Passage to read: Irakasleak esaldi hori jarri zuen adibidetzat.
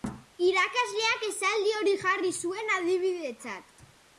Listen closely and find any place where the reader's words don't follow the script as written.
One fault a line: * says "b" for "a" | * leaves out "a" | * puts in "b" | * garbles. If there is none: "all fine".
all fine